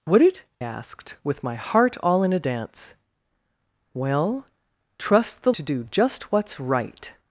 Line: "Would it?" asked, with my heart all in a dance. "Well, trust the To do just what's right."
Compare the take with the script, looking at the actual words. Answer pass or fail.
pass